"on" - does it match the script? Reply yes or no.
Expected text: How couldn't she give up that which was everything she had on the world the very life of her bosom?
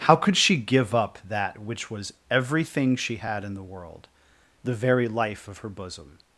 no